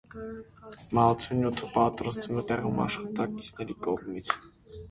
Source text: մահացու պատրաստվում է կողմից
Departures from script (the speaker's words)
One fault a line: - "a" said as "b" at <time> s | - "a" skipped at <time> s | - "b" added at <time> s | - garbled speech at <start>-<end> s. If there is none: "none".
- "նյութը" added at 1.4 s
- "տեղում աշխատակիցների" added at 2.5 s